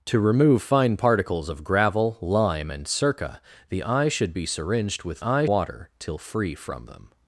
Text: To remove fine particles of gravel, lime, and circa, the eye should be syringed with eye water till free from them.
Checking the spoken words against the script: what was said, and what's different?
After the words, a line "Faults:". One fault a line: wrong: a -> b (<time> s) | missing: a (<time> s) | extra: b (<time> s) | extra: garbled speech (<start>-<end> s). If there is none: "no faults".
To remove fine particles of gravel, lime, and circa, the eye should be syringed with eye water till free from them.
Faults:
no faults